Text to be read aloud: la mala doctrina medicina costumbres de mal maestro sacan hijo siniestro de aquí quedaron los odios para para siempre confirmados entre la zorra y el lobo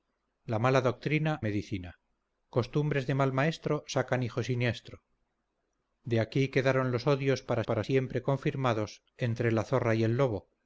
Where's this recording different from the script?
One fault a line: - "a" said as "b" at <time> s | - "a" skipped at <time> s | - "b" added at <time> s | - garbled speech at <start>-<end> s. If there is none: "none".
none